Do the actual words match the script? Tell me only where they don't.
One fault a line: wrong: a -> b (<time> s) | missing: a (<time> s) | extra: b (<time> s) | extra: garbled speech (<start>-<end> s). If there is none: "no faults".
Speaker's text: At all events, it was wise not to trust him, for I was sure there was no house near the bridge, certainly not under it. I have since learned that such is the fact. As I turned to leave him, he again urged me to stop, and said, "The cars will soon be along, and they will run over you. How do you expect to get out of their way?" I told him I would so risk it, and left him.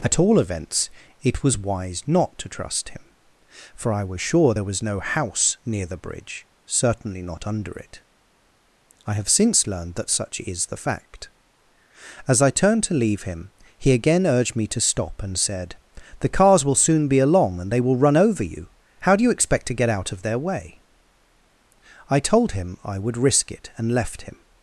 missing: so (23.2 s)